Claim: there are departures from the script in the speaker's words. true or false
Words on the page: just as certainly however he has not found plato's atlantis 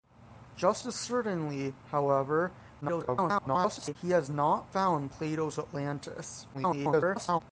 true